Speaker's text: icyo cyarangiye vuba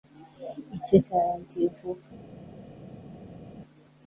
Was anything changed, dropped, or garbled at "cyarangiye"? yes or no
no